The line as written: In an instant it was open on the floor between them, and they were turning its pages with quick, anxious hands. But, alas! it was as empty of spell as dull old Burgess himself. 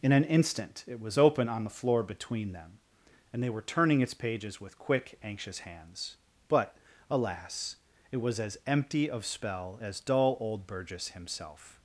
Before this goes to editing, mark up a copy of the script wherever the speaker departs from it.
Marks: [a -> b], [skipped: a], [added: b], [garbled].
In an instant it was open on the floor between them, and they were turning its pages with quick, anxious hands. But, alas! it was as empty of spell as dull old Burgess himself.